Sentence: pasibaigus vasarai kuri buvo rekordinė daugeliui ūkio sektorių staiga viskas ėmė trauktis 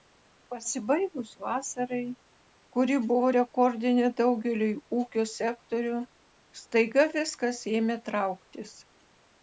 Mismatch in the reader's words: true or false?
false